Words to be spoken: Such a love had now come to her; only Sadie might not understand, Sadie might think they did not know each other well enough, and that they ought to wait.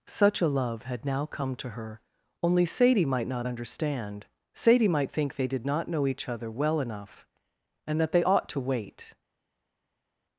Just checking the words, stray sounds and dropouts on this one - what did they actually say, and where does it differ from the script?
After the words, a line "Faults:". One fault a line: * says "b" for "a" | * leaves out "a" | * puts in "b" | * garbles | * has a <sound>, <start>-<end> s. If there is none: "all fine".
Such a love had now come to her; only Sadie might not understand, Sadie might think they did not know each other well enough, and that they ought to wait.
Faults:
all fine